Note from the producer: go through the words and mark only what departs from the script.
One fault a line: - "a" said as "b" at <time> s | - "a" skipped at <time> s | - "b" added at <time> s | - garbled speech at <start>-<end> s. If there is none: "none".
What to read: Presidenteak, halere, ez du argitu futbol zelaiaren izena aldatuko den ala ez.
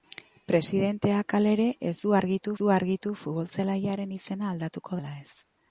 - "du argitu" added at 2.6 s
- "den" skipped at 5.0 s